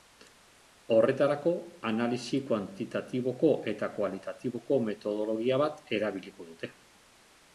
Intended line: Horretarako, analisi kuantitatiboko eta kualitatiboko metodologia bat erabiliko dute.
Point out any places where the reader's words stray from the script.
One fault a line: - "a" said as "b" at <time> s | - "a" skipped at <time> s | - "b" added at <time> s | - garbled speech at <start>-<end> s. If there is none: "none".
none